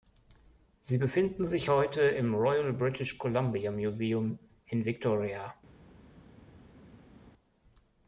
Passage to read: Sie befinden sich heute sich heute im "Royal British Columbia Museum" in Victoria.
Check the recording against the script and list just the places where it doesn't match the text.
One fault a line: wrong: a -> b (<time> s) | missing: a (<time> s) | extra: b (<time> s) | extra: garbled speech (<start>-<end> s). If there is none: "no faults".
missing: sich heute (2.0 s)